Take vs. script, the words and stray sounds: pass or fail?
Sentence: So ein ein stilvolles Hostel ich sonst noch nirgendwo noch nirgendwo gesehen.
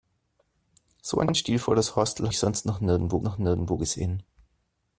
pass